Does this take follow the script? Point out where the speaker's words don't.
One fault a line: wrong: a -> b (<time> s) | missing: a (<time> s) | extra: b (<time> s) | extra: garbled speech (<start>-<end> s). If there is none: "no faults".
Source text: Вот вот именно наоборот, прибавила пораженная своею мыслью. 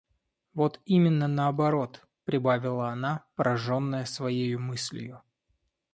missing: вот (0.8 s)
extra: она (2.9 s)